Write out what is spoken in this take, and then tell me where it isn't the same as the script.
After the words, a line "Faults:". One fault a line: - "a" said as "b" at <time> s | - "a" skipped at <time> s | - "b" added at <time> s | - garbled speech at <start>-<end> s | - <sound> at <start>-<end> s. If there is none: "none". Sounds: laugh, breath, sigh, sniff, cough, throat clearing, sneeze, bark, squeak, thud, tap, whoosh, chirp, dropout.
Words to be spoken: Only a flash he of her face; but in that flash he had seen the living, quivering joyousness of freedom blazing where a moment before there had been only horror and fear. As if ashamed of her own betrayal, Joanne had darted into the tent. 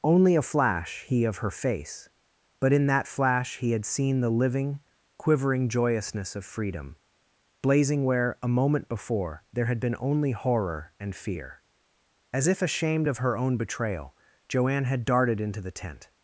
Only a flash he of her face; but in that flash he had seen the living, quivering joyousness of freedom blazing where a moment before there had been only horror and fear. As if ashamed of her own betrayal, Joanne had darted into the tent.
Faults:
none